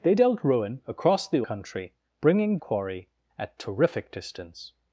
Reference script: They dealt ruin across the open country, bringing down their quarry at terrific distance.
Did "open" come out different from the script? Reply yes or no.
yes